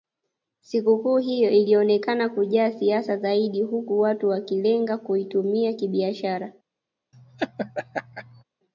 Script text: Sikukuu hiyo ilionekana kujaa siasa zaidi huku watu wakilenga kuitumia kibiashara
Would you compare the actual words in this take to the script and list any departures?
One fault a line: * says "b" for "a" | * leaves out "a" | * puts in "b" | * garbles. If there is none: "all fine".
all fine